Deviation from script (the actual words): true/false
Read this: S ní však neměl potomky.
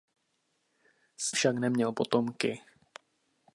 true